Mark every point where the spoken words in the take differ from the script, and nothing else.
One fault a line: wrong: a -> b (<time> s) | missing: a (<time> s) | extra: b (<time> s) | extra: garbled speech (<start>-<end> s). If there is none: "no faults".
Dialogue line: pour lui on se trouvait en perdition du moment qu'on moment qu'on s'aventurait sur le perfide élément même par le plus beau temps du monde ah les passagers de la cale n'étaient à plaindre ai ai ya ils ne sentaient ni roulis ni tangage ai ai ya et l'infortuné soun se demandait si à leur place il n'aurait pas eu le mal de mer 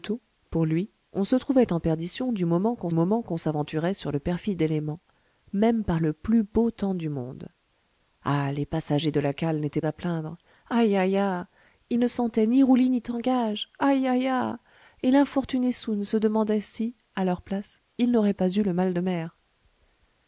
no faults